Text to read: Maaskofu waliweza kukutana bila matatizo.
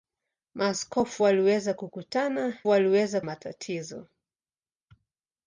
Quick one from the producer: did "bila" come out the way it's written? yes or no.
no